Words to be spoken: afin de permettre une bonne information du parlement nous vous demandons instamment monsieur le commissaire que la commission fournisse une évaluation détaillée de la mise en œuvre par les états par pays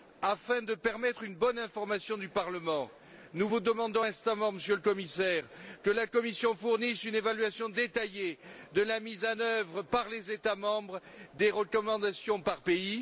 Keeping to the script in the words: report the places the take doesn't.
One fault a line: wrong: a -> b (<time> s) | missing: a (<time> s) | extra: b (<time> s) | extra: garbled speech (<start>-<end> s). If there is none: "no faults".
extra: membres des recommandations (10.6 s)